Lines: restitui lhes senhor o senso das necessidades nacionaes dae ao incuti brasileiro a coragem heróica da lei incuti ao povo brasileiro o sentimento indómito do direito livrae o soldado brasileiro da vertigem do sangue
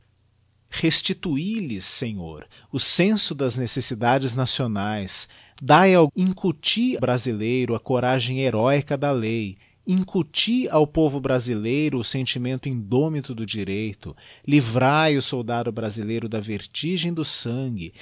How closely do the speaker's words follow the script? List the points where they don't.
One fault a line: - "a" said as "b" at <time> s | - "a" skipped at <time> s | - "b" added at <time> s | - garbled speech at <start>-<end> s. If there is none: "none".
none